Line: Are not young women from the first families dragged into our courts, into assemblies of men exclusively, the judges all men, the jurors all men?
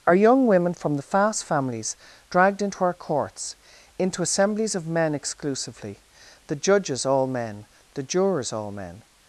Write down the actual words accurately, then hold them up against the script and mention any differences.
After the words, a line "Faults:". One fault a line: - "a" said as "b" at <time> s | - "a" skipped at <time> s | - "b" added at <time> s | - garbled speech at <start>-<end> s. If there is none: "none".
Are young women from the fast families dragged into our courts, into assemblies of men exclusively, the judges all men, the jurors all men?
Faults:
- "not" skipped at 0.1 s
- "first" said as "fast" at 1.0 s